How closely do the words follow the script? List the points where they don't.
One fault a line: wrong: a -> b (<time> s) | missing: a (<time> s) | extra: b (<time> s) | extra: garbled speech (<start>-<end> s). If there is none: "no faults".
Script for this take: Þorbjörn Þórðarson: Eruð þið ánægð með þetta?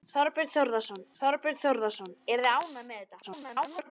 extra: þorbjörn Þórðarson (1.2 s)
extra: garbled speech (3.2-3.9 s)